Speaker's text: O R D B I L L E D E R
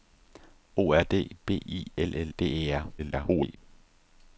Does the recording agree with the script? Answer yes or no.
no